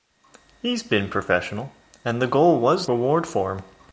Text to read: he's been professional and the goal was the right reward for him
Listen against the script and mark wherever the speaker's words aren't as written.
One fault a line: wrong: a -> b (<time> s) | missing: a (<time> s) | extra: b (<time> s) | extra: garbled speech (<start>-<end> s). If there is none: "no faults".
missing: the right (2.9 s)